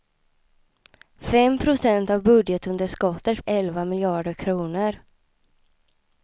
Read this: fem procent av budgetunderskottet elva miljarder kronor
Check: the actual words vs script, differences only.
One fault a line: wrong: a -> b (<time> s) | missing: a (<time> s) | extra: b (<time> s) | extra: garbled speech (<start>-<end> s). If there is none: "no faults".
no faults